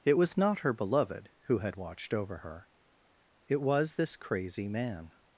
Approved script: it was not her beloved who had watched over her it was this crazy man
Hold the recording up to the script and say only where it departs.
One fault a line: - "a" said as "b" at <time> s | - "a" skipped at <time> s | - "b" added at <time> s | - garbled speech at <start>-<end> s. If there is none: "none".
none